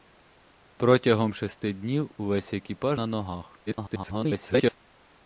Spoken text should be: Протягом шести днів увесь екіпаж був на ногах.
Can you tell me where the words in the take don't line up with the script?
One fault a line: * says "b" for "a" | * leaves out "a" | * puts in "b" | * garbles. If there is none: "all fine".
* leaves out "був"
* garbles